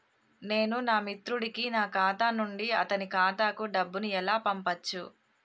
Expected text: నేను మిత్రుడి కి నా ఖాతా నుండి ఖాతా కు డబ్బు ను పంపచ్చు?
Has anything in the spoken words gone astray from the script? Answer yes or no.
yes